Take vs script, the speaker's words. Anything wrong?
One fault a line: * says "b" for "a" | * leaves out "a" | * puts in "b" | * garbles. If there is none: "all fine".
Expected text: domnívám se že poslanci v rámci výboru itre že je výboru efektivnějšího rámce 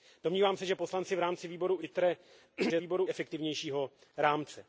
all fine